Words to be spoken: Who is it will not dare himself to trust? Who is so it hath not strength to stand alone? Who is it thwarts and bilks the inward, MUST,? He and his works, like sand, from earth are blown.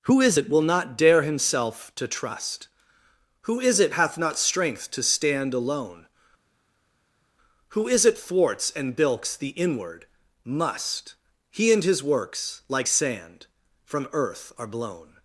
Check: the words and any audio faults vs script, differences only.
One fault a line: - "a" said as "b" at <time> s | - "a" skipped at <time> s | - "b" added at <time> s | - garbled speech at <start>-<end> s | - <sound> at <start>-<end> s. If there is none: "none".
- "so" skipped at 3.8 s